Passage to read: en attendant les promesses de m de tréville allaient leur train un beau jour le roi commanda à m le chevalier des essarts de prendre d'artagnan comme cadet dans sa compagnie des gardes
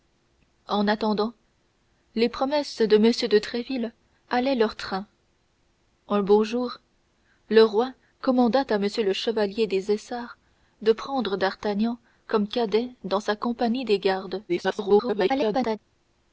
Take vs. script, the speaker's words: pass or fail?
fail